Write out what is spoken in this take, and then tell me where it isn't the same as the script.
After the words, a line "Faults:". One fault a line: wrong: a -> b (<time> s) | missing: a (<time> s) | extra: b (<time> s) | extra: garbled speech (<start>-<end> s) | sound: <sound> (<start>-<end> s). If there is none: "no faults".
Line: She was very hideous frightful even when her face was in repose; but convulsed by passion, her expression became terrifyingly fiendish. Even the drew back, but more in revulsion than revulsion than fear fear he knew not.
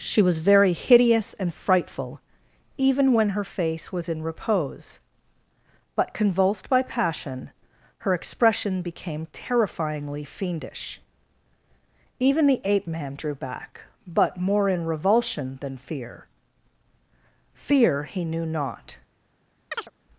She was very hideous and frightful even when her face was in repose; but convulsed by passion, her expression became terrifyingly fiendish. Even the ape man drew back, but more in revulsion than fear fear he knew not.
Faults:
extra: and (1.4 s)
extra: ape man (12.6 s)
missing: revulsion than (15.8 s)
sound: chirp (19.7-19.9 s)